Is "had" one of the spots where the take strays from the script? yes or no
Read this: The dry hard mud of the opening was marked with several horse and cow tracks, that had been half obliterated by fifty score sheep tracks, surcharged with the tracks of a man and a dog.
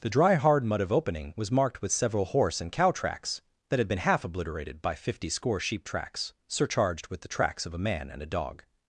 no